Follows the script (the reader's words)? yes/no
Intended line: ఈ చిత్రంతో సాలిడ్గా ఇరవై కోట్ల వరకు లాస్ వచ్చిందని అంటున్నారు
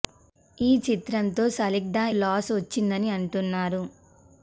no